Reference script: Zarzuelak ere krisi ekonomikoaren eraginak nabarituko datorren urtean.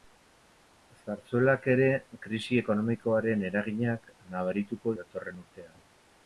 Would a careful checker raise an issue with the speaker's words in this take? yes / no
no